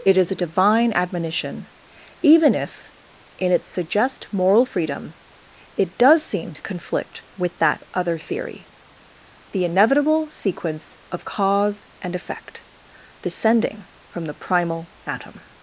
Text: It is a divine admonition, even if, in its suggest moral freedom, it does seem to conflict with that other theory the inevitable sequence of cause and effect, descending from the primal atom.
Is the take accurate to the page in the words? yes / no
yes